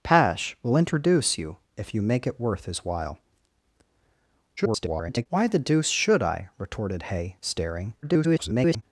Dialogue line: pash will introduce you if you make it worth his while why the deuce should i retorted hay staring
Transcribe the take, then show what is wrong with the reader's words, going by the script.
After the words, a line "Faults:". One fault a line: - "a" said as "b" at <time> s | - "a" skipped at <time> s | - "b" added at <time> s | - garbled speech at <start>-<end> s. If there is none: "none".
pash will introduce you if you make it worth his while [garbled] why the deuce should i retorted hay staring [garbled]
Faults:
- garbled speech at 4.6-5.3 s
- garbled speech at 8.0-8.8 s